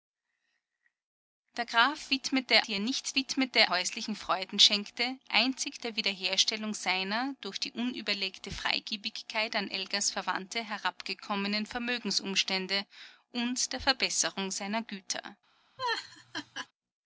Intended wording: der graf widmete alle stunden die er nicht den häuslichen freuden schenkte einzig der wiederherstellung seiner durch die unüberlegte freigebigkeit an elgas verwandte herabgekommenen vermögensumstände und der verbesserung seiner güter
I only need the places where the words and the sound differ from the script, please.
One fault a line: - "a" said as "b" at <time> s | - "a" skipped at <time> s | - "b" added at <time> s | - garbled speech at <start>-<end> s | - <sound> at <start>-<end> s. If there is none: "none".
- "alle stunden" skipped at 2.6 s
- "den" said as "widmete" at 3.1 s
- laugh at 15.8-16.7 s